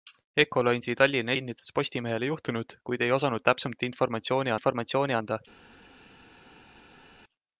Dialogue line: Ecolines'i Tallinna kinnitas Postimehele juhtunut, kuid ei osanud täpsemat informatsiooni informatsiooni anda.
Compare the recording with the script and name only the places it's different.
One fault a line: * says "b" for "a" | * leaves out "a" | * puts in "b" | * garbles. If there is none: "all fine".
all fine